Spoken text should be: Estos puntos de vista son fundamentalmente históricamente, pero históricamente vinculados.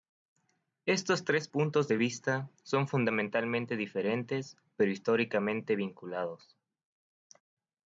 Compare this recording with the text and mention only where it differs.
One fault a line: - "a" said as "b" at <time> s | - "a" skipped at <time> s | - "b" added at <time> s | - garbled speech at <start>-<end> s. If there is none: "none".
- "tres" added at 1.2 s
- "históricamente" said as "diferentes" at 3.8 s